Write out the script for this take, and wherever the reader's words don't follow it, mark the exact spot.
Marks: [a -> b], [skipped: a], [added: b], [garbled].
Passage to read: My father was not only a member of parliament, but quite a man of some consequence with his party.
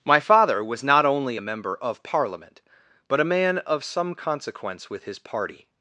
My father was not only a member of parliament, but [skipped: quite] a man of some consequence with his party.